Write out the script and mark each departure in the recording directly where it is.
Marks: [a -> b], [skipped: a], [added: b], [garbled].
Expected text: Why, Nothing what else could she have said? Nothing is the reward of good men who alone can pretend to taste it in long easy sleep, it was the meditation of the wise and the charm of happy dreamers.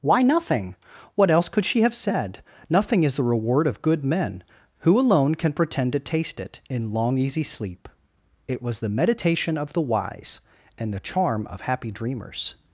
Why, Nothing what else could she have said? Nothing is the reward of good men who alone can pretend to taste it in long easy sleep, it was the meditation of the wise and the charm of happy dreamers.